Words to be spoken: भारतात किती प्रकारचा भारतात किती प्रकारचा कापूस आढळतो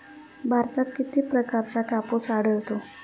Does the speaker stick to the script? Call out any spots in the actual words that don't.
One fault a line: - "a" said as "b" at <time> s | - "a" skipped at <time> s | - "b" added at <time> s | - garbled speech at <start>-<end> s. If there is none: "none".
- "भारतात किती प्रकारचा" skipped at 1.8 s